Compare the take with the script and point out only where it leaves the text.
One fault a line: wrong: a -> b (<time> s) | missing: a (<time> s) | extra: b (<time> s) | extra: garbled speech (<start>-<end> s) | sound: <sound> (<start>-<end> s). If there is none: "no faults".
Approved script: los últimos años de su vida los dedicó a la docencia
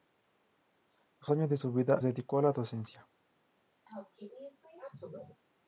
missing: últimos (1.3 s)
missing: los (2.0 s)
sound: sneeze (3.9-5.4 s)